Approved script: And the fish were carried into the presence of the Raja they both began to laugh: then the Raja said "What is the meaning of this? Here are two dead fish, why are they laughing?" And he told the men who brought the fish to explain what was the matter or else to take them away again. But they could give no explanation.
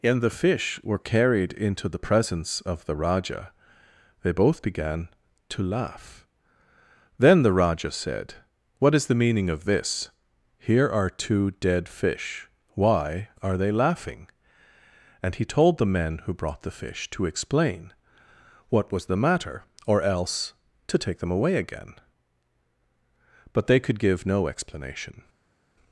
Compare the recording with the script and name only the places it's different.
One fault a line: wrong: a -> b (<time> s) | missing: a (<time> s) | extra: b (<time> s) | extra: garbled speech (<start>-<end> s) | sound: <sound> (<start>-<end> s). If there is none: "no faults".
no faults